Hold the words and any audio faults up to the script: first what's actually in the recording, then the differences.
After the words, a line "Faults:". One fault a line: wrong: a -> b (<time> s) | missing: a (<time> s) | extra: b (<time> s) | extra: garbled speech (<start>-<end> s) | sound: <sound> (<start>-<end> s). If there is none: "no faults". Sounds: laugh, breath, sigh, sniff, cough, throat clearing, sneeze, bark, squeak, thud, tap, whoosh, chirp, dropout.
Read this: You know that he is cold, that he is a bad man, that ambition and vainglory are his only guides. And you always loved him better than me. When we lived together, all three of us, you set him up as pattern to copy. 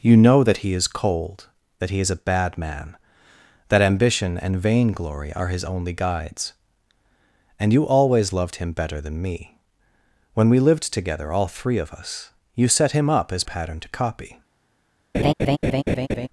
You know that he is cold, that he is a bad man, that ambition and vainglory are his only guides. And you always loved him better than me. When we lived together, all three of us, you set him up as pattern to copy.
Faults:
sound: laugh (15.1-16.3 s)